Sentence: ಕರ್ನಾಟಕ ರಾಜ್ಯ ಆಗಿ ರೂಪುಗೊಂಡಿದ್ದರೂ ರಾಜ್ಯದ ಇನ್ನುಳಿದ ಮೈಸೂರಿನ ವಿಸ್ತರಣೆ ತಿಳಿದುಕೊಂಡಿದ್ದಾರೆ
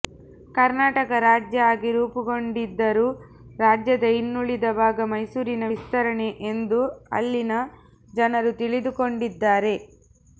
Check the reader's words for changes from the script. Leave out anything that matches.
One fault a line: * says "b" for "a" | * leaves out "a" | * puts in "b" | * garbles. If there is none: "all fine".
* puts in "ಭಾಗ"
* puts in "ಎಂದು ಅಲ್ಲಿನ ಜನರು"